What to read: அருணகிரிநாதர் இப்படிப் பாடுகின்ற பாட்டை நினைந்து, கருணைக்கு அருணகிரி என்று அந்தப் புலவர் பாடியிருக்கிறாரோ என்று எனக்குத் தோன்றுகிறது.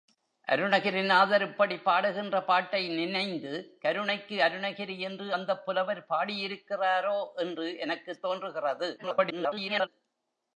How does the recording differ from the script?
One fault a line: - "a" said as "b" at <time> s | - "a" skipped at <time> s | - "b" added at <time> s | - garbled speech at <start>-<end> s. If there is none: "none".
- garbled speech at 9.0-9.9 s